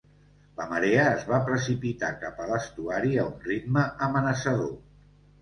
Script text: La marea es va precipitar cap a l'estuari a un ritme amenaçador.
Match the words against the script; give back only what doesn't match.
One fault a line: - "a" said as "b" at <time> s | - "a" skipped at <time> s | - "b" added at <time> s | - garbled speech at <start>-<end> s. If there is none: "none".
none